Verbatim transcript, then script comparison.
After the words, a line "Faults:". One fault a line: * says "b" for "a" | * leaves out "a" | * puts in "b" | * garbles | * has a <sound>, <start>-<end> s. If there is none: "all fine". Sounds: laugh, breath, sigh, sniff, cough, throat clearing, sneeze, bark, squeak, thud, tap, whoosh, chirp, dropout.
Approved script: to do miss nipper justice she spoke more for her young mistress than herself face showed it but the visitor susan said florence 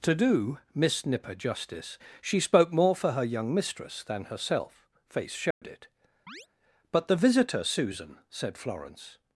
to do miss nipper justice she spoke more for her young mistress than herself face showed it but the visitor susan said florence
Faults:
* has a dropout, 5.5-5.6 s
* has a chirp, 6.3-6.5 s